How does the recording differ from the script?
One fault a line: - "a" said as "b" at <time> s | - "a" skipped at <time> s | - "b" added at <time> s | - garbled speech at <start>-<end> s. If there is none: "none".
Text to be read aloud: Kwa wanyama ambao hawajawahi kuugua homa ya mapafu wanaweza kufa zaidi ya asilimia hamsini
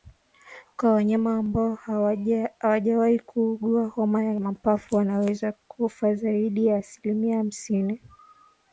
none